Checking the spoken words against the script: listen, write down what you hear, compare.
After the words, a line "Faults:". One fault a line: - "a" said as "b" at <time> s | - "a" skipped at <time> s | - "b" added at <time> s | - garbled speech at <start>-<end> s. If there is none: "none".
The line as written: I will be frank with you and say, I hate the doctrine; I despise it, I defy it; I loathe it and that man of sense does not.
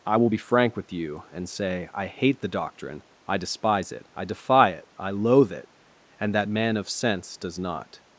I will be frank with you and say, I hate the doctrine; I despise it, I defy it; I loathe it and that man of sense does not.
Faults:
none